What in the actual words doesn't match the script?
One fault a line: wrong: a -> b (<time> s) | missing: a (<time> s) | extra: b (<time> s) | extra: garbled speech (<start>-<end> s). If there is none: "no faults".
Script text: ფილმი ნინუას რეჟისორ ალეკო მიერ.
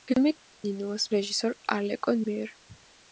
no faults